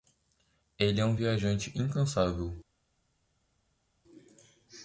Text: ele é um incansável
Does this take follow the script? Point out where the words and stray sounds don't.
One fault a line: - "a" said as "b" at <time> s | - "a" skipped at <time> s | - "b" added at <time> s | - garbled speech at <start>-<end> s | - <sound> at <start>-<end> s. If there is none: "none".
- "viajante" added at 1.1 s